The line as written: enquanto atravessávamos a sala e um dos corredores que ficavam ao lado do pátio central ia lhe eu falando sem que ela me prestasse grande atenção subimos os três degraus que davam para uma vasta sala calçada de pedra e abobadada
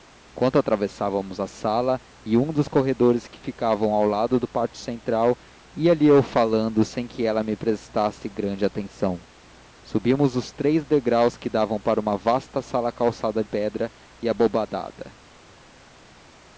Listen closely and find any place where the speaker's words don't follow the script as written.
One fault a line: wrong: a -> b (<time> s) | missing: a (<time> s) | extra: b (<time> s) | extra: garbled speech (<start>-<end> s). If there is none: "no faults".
missing: de (13.4 s)